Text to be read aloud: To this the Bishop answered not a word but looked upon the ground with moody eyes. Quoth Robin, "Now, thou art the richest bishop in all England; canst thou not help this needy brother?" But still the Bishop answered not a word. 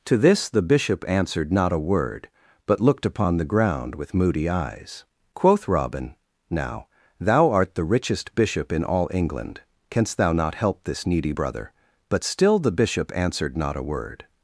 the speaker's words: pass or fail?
pass